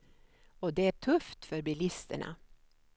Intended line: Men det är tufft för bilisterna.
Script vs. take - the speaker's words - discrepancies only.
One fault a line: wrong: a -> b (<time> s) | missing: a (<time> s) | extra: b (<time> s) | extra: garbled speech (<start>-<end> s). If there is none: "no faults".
wrong: Men -> Och (0.6 s)